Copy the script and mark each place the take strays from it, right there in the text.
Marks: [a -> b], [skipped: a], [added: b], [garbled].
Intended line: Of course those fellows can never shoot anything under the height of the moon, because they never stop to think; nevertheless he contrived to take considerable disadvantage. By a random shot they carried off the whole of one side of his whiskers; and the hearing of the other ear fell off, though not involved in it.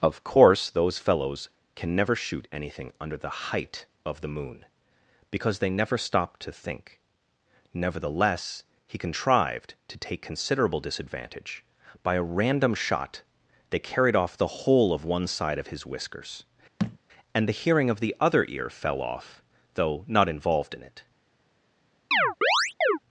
Of course those fellows can never shoot anything under the height of the moon, because they never stop to think; nevertheless he contrived to take considerable disadvantage. By a random shot they carried off the whole of one side of his whiskers; and the hearing of the other ear fell off, though not involved in it.